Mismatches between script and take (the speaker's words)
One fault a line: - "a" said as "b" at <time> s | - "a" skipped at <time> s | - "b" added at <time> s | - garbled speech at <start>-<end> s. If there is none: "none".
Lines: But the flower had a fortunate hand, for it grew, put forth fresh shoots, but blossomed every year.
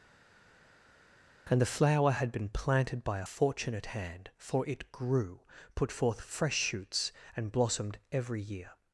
- "But" said as "And" at 1.5 s
- "been planted by" added at 2.3 s
- "but" said as "and" at 7.3 s